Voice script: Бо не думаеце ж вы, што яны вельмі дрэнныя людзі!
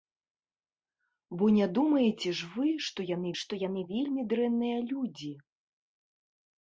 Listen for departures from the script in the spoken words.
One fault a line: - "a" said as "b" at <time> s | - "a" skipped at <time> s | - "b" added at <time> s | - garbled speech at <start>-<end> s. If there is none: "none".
- "што яны" added at 3.4 s